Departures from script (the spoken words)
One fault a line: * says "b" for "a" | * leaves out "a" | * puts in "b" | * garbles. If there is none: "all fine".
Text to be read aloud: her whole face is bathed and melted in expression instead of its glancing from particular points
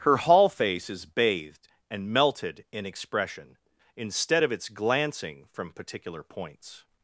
* says "hall" for "whole"